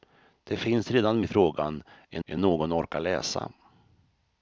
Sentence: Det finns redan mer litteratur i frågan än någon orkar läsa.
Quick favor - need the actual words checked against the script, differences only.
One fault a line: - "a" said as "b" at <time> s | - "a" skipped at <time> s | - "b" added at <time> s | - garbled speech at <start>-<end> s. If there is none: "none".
- "mer litteratur" skipped at 1.2 s
- "än" added at 2.2 s